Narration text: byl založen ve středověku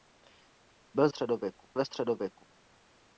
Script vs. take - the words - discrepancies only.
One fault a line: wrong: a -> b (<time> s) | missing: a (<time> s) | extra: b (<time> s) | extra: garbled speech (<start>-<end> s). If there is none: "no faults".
wrong: založen -> středověku (1.1 s)